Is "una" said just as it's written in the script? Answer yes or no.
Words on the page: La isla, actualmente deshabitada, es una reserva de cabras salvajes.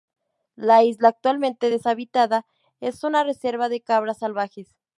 yes